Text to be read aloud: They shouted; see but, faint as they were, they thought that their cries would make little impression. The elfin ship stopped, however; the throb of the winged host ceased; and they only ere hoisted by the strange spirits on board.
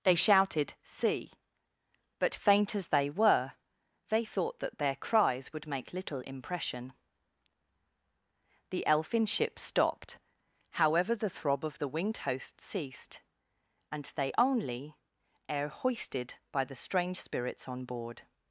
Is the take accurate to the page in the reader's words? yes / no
yes